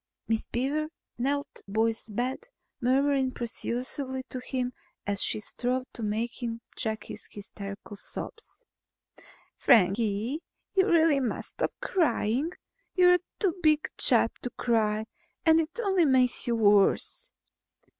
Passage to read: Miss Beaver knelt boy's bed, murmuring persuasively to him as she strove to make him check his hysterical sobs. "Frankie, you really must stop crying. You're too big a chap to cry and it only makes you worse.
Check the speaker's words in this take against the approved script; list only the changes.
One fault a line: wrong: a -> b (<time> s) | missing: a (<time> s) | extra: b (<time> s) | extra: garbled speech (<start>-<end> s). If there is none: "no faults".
no faults